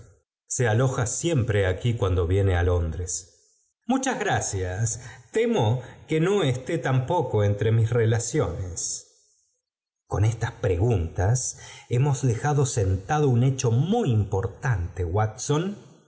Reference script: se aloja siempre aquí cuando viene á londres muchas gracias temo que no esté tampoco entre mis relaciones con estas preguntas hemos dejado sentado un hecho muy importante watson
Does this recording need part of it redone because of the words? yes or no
no